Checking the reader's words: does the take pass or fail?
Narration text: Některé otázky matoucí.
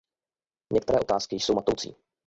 fail